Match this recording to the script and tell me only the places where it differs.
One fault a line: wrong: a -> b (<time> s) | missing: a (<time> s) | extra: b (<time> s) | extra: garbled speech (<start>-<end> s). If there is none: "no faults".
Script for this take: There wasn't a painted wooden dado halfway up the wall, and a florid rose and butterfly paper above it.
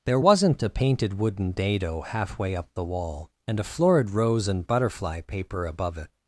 no faults